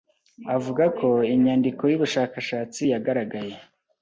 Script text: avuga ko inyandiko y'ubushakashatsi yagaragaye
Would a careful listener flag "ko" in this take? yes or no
no